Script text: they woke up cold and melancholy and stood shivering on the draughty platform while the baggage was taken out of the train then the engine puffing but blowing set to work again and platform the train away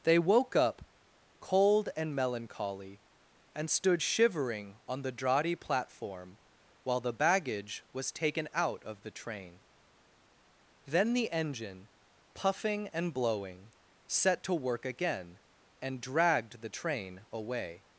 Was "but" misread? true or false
true